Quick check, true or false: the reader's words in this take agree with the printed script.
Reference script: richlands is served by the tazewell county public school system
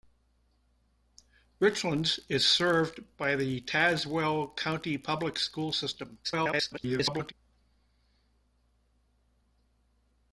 false